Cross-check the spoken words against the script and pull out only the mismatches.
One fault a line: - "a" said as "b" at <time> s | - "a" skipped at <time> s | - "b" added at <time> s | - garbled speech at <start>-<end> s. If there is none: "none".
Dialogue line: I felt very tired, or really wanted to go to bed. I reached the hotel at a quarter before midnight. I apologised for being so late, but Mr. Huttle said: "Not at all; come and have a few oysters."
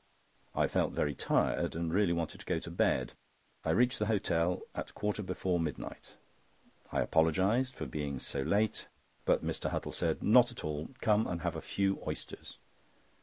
- "or" said as "and" at 1.8 s